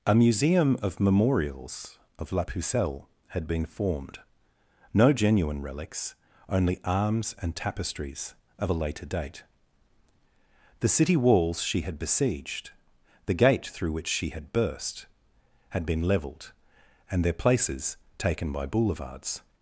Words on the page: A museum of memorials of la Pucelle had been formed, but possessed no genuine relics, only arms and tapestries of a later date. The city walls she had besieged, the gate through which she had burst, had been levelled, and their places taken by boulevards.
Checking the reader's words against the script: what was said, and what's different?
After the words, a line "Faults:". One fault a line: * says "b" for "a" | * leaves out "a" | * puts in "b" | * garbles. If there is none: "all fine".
A museum of memorials of la Pucelle had been formed, no genuine relics, only arms and tapestries of a later date. The city walls she had besieged, the gate through which she had burst, had been levelled, and their places taken by boulevards.
Faults:
* leaves out "but possessed"